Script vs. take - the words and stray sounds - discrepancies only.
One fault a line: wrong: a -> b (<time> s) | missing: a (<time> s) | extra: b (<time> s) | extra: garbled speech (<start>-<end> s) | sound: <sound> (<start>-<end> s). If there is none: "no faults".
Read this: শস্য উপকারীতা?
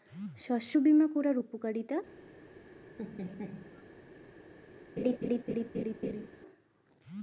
extra: বিমা করার (0.8 s)
sound: laugh (3.0-3.8 s)
sound: laugh (5.0-6.3 s)